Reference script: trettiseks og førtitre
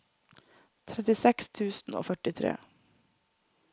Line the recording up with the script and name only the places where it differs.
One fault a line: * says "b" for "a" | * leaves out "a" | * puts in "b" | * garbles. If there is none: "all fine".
* puts in "tusen"